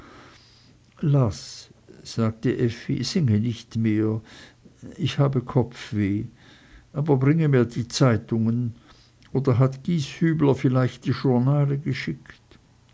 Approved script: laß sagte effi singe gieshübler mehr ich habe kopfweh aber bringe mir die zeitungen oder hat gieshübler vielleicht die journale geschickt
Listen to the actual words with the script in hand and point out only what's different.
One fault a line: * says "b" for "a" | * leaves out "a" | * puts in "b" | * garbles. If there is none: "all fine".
* says "nicht" for "gieshübler"